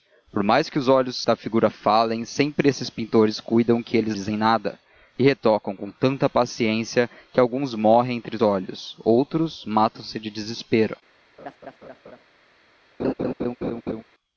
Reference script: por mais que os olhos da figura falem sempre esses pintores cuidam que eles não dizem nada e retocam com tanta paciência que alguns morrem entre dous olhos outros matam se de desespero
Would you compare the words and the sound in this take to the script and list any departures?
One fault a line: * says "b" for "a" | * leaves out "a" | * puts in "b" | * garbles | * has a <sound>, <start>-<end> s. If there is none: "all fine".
* leaves out "não"
* leaves out "dous"
* has a laugh, 11.4-12.2 s
* has a laugh, 13.0-14.0 s